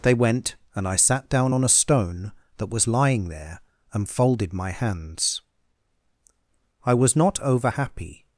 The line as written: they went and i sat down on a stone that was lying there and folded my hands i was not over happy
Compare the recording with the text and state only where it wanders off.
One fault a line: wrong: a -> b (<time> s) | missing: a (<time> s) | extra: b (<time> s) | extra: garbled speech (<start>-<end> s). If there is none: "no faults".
no faults